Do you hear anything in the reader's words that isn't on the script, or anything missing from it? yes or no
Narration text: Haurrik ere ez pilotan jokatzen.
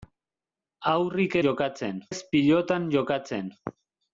yes